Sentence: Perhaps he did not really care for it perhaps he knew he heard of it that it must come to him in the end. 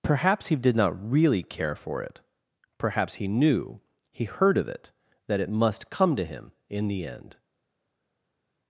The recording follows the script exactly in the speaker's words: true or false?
true